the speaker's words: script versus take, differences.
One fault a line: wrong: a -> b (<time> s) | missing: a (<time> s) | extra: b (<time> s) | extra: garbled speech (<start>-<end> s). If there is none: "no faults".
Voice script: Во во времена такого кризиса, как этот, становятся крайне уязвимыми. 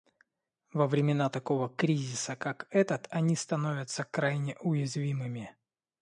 missing: во (0.9 s)
extra: они (3.1 s)